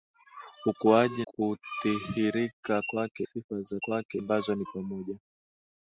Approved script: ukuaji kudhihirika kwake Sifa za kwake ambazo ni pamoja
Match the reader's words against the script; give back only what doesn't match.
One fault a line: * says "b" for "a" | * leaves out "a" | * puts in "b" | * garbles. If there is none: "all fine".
all fine